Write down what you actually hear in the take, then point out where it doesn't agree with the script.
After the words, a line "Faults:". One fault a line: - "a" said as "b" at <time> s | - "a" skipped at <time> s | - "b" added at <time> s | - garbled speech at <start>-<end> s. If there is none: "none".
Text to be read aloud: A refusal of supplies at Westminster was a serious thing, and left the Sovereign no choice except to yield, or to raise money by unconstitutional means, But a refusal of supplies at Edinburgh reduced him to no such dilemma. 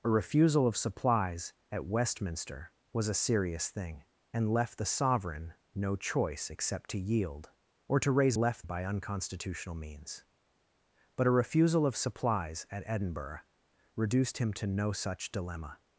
A refusal of supplies at Westminster was a serious thing, and left the Sovereign no choice except to yield, or to raise left by unconstitutional means, But a refusal of supplies at Edinburgh reduced him to no such dilemma.
Faults:
- "money" said as "left" at 8.4 s